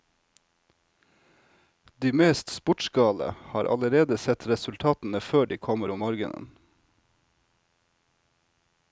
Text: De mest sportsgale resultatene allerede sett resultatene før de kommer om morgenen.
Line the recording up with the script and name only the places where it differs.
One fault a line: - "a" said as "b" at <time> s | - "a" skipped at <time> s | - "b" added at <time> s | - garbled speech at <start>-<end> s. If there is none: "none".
- "resultatene" said as "har" at 3.4 s